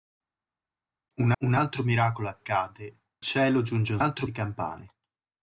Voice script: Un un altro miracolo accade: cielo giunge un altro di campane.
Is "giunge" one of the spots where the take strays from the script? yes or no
no